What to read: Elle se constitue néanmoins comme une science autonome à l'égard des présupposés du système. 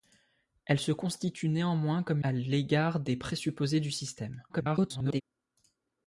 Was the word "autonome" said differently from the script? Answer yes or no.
yes